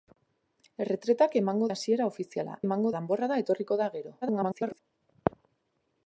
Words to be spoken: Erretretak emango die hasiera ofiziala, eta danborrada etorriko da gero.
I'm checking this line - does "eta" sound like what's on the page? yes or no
no